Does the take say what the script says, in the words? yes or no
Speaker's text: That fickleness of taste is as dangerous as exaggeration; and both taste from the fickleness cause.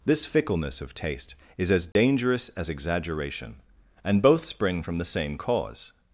no